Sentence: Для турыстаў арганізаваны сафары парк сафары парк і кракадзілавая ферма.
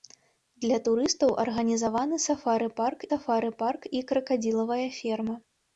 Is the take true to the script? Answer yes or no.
yes